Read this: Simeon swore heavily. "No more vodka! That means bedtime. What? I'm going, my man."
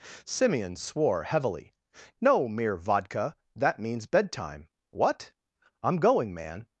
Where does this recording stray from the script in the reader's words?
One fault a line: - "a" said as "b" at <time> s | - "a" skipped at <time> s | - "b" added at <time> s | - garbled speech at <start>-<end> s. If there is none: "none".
- "more" said as "mere" at 2.5 s
- "my" skipped at 6.3 s